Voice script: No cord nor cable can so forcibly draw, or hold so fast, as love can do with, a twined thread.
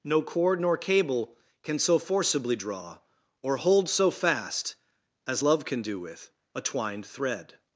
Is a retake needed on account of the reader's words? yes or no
no